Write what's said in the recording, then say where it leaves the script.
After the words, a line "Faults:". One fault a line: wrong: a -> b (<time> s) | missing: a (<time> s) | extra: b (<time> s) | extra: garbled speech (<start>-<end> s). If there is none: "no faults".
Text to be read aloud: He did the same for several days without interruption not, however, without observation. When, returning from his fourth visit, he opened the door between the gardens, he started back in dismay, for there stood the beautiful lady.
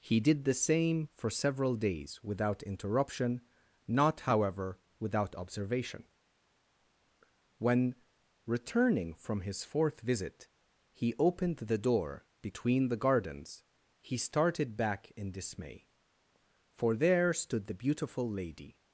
He did the same for several days without interruption not, however, without observation. When, returning from his fourth visit, he opened the door between the gardens, he started back in dismay, for there stood the beautiful lady.
Faults:
no faults